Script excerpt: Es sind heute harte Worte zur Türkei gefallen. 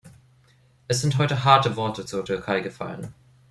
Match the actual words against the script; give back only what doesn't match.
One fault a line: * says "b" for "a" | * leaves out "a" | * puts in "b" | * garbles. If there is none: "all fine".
all fine